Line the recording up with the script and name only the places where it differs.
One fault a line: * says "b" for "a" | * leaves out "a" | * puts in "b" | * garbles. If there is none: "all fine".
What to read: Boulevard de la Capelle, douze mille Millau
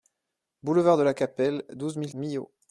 all fine